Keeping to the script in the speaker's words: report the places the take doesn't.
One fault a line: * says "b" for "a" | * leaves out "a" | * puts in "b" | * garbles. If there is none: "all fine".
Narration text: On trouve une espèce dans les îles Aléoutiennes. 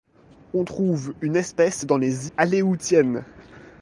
* leaves out "îles"